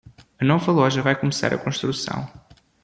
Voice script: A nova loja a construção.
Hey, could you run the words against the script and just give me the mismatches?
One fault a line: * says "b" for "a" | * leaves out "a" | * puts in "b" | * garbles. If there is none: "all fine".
* puts in "vai começar"